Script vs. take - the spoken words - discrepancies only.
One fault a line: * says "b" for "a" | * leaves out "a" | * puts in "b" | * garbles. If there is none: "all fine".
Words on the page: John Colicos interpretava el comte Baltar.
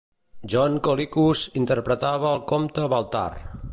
all fine